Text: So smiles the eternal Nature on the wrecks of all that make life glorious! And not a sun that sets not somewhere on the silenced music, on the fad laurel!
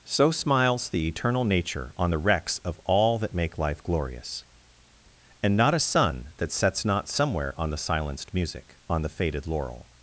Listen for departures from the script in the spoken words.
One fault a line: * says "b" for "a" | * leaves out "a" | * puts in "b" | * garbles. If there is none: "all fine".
* says "faded" for "fad"